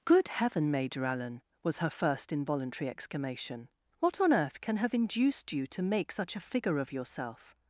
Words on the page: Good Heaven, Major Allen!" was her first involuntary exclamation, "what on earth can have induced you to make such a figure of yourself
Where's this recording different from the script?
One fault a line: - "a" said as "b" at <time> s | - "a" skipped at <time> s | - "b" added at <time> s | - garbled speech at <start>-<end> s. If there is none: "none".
none